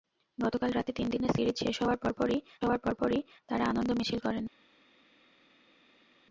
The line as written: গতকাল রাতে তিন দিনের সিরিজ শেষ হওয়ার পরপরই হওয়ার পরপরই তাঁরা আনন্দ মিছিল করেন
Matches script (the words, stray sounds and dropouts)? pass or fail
pass